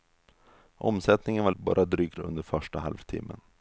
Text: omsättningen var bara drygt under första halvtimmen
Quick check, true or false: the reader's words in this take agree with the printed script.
true